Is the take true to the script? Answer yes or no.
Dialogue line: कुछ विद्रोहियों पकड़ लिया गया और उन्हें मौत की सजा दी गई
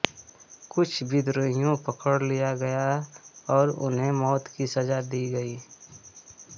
yes